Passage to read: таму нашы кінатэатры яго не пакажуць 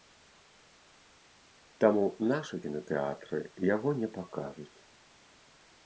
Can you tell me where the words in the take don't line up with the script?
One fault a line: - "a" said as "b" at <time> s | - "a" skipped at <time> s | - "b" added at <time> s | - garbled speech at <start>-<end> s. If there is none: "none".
none